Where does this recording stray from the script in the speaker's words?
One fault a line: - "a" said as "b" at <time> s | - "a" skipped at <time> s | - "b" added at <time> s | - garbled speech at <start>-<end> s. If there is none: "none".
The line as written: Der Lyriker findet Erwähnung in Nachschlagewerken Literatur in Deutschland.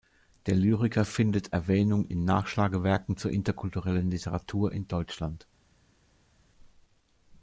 - "zur interkulturellen" added at 3.2 s